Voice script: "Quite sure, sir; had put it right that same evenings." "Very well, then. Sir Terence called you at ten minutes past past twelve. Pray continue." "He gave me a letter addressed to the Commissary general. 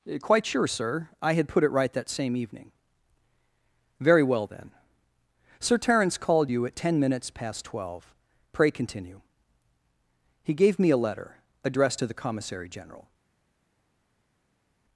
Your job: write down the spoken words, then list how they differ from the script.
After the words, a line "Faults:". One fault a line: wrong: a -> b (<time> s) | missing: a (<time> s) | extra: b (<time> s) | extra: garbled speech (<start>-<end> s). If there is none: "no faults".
"Quite sure, sir; I had put it right that same evening." "Very well, then. Sir Terence called you at ten minutes past twelve. Pray continue." "He gave me a letter addressed to the Commissary general.
Faults:
extra: I (1.2 s)
wrong: evenings -> evening (2.4 s)
missing: past (7.6 s)